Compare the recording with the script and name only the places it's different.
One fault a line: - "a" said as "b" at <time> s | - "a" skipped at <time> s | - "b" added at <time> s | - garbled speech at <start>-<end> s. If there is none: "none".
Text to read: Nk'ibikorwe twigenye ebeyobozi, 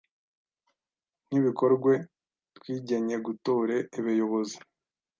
- "gutore" added at 3.3 s